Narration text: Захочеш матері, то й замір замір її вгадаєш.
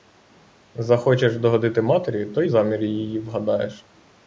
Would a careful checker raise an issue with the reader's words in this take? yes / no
yes